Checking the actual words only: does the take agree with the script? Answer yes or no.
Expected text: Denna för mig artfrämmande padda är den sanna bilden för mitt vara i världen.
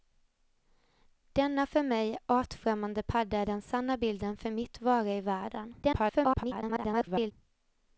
no